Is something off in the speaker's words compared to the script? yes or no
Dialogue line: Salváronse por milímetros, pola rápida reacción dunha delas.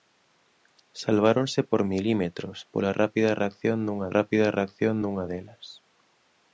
yes